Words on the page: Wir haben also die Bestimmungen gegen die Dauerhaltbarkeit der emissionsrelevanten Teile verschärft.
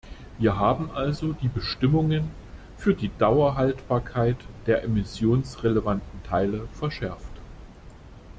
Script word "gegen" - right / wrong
wrong